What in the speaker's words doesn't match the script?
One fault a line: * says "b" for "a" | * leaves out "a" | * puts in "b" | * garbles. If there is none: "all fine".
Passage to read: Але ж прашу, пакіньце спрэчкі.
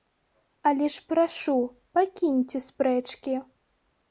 all fine